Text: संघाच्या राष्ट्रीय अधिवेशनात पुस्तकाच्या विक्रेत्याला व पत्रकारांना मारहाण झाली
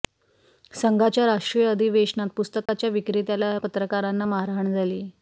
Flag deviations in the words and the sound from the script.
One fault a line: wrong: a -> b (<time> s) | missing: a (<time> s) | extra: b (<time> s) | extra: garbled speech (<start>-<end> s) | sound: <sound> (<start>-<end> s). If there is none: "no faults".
sound: dropout (2.7-2.7 s)
missing: व (3.6 s)